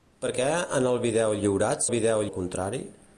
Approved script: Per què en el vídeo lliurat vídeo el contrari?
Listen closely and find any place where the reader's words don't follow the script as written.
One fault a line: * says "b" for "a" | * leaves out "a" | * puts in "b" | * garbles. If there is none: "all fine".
all fine